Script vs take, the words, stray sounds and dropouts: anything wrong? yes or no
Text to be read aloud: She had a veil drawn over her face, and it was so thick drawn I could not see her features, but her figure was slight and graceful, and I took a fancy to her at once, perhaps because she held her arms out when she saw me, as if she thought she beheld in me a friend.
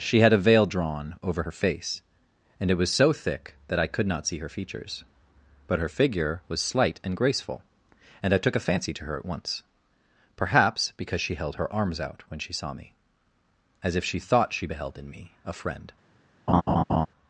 yes